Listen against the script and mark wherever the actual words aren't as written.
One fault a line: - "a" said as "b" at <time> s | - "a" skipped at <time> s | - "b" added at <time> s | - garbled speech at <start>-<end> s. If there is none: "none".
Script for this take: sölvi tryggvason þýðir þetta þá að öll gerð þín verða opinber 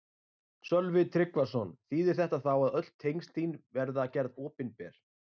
- "gerð" said as "tengsl" at 3.1 s
- "gerð" added at 4.2 s